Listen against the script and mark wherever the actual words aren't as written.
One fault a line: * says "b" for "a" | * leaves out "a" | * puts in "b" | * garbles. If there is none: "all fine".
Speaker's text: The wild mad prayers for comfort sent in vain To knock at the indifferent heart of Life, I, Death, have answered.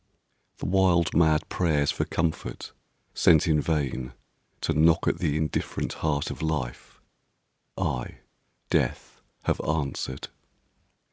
all fine